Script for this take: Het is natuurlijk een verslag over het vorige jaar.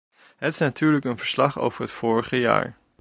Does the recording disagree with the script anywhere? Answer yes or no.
no